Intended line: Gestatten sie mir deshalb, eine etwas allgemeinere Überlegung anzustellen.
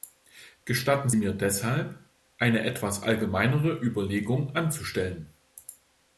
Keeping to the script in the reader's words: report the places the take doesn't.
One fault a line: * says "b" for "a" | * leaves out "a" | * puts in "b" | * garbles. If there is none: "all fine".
* leaves out "sie"